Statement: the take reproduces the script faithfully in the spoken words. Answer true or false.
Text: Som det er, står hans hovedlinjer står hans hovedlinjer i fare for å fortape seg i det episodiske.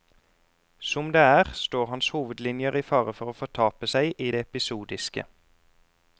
false